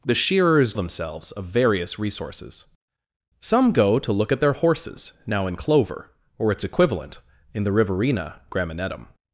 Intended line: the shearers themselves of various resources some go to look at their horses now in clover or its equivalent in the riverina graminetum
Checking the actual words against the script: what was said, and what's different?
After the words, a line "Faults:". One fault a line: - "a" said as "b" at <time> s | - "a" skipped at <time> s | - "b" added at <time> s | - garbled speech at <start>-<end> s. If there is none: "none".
the shearers themselves of various resources some go to look at their horses now in clover or its equivalent in the riverina graminetum
Faults:
none